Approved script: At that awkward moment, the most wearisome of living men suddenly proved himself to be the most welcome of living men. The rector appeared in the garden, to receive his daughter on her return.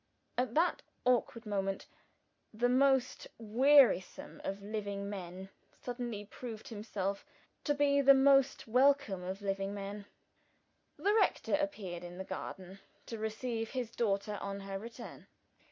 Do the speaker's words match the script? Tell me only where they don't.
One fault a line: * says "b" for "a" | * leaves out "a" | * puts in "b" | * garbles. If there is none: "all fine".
all fine